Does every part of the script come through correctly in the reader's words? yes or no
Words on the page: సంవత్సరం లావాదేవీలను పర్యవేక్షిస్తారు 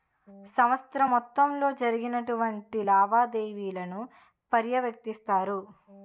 no